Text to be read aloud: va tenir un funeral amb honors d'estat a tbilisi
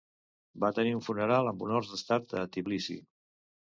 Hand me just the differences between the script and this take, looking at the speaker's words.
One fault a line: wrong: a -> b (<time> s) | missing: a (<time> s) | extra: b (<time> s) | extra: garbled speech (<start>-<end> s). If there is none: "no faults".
no faults